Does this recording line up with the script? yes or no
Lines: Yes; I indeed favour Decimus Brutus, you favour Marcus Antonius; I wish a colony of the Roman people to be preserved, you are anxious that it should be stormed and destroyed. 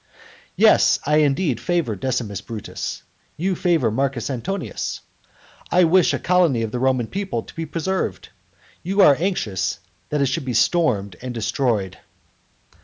yes